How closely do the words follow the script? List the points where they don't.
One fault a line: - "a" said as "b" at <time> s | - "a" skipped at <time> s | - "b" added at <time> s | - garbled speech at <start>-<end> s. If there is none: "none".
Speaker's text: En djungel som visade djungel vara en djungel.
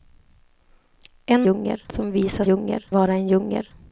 none